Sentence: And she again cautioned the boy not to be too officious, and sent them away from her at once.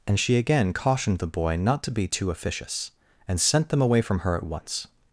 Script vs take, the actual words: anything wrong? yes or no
no